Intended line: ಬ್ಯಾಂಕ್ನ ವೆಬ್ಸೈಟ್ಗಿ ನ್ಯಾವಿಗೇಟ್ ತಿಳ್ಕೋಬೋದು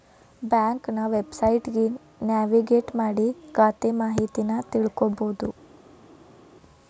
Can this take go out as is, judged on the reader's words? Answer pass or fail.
fail